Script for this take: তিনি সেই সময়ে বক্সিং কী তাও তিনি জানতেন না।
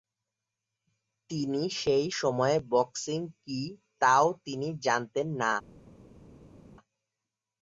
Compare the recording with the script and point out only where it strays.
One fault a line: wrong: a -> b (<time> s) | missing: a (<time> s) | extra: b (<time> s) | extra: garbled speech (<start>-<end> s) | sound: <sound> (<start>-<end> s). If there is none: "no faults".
no faults